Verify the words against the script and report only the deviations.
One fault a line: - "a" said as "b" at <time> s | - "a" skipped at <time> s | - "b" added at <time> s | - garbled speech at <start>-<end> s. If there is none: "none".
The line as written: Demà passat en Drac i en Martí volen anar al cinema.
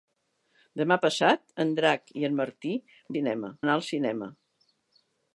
- "volen" said as "cinema" at 3.1 s